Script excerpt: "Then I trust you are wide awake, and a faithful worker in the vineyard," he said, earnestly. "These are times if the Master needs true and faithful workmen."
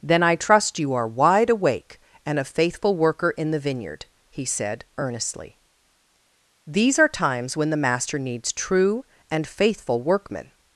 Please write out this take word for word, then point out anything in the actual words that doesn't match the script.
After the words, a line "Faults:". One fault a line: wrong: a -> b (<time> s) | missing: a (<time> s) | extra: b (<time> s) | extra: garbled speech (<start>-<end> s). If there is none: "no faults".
"Then I trust you are wide awake, and a faithful worker in the vineyard," he said, earnestly. "These are times when the Master needs true and faithful workmen."
Faults:
wrong: if -> when (7.5 s)